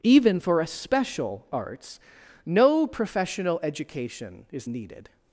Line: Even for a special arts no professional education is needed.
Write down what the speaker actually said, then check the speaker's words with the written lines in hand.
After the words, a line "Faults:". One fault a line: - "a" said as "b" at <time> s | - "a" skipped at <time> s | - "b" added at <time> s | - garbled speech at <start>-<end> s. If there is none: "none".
Even for a special arts no professional education is needed.
Faults:
none